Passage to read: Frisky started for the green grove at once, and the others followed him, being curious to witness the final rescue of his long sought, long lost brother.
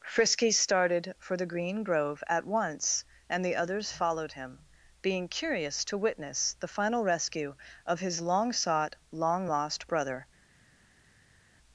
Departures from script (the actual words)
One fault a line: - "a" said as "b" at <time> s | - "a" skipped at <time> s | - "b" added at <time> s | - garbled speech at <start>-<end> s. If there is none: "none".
none